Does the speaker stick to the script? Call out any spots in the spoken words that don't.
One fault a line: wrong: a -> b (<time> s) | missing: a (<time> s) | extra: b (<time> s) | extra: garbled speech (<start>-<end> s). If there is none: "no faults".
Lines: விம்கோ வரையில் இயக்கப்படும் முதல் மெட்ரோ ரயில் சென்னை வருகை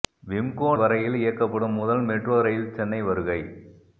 no faults